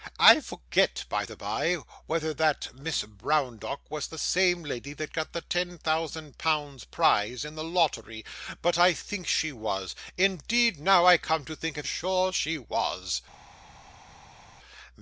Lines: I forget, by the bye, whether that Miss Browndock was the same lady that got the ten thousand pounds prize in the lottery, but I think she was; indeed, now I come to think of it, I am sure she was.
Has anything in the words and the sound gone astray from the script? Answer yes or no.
yes